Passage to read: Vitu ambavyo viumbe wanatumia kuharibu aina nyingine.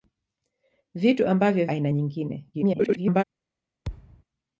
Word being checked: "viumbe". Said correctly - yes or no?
no